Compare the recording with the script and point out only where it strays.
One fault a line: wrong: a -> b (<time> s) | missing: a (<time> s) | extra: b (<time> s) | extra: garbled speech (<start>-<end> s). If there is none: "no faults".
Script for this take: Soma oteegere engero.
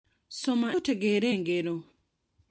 no faults